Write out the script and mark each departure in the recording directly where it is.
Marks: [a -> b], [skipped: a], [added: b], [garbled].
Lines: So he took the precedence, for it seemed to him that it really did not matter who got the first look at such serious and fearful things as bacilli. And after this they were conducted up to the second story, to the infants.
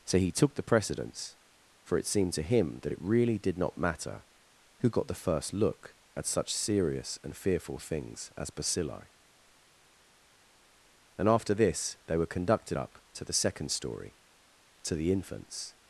So he took the precedence, for it seemed to him that it really did not matter who got the first look at such serious and fearful things as bacilli. And after this they were conducted up to the second story, to the infants.